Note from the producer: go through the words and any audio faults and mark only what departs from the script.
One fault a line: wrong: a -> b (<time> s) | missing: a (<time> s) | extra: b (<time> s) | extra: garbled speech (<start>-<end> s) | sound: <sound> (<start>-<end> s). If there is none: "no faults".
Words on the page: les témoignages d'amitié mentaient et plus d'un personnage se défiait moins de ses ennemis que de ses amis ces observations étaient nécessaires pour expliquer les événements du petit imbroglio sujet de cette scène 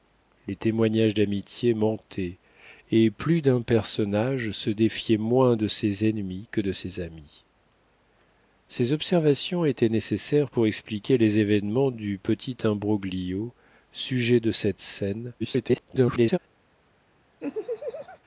extra: garbled speech (15.4-16.4 s)
sound: laugh (17.4-18.2 s)